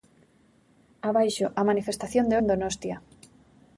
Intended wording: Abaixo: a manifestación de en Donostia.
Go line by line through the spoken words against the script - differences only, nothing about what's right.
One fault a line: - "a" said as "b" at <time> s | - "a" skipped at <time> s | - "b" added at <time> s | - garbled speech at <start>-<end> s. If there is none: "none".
none